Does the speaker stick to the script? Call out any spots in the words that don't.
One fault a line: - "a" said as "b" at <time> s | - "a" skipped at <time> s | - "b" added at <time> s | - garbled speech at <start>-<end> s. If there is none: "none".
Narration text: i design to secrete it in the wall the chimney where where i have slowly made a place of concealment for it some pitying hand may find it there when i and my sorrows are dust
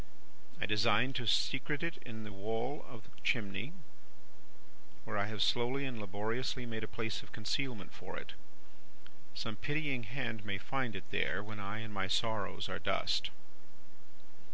- "of" added at 2.9 s
- "where" skipped at 5.2 s
- "and laboriously" added at 5.8 s